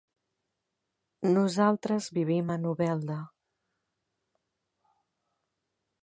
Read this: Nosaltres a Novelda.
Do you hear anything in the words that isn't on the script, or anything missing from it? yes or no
yes